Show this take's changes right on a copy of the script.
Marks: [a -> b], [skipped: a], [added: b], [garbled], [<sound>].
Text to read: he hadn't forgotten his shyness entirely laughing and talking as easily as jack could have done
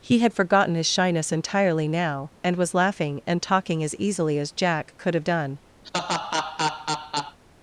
he [hadn't -> had] forgotten his shyness entirely [added: now and was] laughing and talking as easily as jack could have done [laugh]